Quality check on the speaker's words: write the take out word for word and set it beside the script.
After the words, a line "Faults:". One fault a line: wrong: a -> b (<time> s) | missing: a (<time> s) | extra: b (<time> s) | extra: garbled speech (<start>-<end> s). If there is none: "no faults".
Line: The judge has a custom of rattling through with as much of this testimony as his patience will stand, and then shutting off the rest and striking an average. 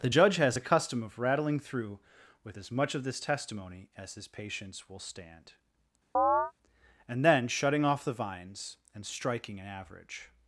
The judge has a custom of rattling through with as much of this testimony as his patience will stand, and then shutting off the vines and striking an average.
Faults:
wrong: rest -> vines (8.1 s)